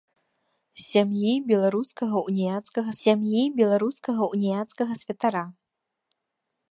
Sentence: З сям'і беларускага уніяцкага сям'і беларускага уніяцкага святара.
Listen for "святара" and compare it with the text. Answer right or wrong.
right